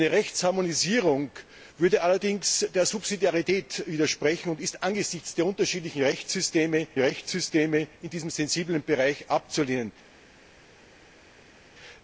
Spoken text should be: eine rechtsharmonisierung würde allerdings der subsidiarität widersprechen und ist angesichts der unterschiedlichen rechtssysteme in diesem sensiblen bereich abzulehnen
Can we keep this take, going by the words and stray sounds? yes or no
no